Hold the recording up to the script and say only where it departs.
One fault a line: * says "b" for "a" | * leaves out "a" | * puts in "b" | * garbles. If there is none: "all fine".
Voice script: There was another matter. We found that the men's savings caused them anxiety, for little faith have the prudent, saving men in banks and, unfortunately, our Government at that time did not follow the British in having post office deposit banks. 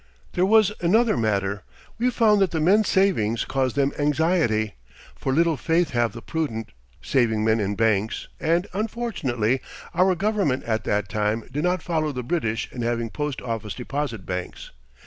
all fine